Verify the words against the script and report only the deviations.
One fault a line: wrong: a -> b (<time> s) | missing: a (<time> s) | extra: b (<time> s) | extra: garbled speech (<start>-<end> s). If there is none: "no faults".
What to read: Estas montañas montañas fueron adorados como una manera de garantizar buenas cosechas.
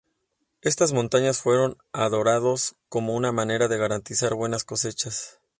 missing: montañas (1.4 s)